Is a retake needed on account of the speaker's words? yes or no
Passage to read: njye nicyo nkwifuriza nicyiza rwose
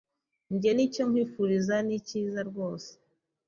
no